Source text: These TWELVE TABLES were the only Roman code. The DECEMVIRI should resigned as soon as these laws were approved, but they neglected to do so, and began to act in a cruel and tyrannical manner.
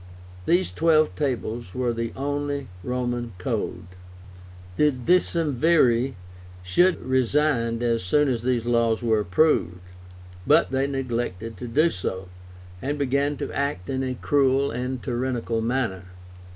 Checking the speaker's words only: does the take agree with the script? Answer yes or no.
yes